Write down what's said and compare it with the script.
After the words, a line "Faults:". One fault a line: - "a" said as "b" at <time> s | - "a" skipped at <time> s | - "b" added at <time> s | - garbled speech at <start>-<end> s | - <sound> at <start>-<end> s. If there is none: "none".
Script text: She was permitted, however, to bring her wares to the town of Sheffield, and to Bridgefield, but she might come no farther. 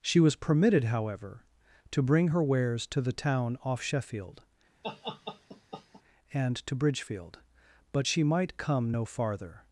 She was permitted, however, to bring her wares to the town off Sheffield, and to Bridgefield, but she might come no farther.
Faults:
- "of" said as "off" at 3.6 s
- laugh at 4.8-6.0 s